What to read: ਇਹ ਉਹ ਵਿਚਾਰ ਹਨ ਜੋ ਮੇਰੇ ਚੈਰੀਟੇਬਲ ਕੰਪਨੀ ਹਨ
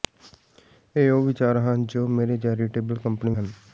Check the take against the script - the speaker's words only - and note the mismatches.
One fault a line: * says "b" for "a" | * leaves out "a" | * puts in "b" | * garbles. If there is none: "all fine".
all fine